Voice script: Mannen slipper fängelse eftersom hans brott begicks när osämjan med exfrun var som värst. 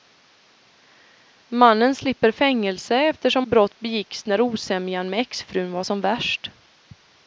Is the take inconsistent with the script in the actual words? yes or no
yes